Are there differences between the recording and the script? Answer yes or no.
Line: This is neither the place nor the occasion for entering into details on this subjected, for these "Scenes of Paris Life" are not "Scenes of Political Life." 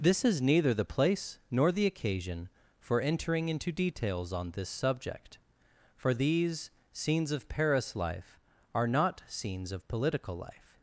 yes